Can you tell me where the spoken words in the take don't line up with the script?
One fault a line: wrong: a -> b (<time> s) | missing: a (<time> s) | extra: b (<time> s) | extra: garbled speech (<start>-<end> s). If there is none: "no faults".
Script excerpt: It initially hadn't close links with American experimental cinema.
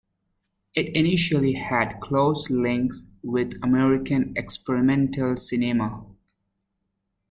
wrong: hadn't -> had (1.5 s)